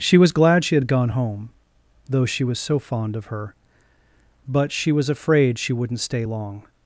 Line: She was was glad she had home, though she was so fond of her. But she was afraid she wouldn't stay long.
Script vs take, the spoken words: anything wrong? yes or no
yes